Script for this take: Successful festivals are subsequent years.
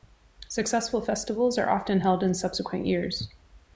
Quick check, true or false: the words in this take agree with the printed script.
false